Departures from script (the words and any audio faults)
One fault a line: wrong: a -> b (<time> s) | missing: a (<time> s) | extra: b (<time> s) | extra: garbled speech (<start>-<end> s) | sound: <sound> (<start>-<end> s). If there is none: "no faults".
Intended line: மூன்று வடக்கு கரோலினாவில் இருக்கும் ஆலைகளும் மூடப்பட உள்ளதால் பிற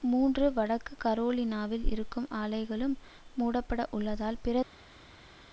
no faults